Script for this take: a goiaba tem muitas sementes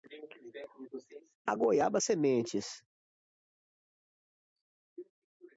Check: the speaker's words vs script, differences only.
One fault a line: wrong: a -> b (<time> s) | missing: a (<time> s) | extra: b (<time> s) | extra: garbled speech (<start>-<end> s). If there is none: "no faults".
missing: tem muitas (2.0 s)